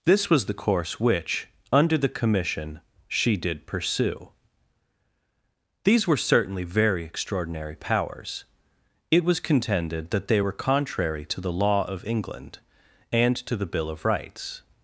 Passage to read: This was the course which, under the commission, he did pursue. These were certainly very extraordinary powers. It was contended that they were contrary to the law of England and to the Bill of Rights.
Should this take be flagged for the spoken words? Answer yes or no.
yes